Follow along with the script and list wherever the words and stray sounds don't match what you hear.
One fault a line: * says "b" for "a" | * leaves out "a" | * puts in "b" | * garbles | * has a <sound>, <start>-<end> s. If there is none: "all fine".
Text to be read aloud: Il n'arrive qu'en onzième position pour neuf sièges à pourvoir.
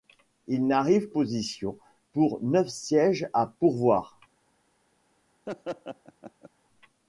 * leaves out "qu'en onzième"
* has a laugh, 5.5-6.5 s